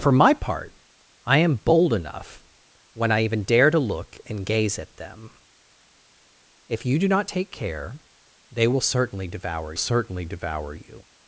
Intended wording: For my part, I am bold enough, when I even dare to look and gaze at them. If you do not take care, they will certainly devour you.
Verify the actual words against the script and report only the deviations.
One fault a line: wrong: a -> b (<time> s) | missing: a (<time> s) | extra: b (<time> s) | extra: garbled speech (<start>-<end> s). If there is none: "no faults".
extra: certainly devour (9.7 s)